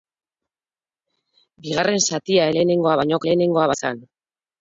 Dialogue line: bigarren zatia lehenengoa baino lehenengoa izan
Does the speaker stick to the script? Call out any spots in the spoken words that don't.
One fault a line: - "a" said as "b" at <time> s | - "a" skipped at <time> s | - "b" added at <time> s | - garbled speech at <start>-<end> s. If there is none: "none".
none